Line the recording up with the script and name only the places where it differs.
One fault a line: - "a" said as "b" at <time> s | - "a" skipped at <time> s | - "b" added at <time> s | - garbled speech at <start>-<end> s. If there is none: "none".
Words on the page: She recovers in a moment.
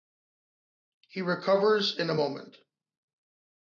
- "She" said as "He" at 1.1 s